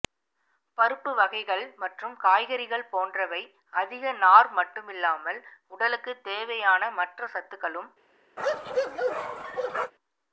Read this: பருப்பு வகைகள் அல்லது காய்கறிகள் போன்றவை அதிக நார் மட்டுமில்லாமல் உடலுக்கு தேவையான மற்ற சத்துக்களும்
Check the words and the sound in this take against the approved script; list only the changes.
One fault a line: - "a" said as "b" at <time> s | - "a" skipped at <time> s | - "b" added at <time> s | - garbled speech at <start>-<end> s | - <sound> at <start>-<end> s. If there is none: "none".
- "அல்லது" said as "மற்றும்" at 1.8 s
- bark at 8.4-9.9 s